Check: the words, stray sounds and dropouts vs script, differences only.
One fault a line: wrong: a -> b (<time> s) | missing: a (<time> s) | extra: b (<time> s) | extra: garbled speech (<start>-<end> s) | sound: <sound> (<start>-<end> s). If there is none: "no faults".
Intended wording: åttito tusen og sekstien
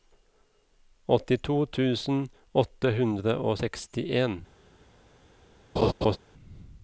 extra: åtte hundre (2.6 s)
sound: laugh (5.8-6.2 s)